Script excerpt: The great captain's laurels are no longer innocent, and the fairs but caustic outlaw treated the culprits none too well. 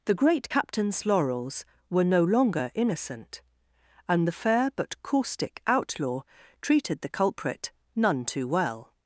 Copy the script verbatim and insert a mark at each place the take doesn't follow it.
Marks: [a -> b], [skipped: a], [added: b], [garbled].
The great captain's laurels [are -> were] no longer innocent, and the [fairs -> fair] but caustic outlaw treated the [culprits -> culprit] none too well.